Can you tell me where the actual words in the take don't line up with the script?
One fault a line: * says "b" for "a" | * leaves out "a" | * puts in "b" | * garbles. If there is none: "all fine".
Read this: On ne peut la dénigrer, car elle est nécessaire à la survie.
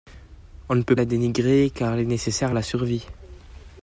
all fine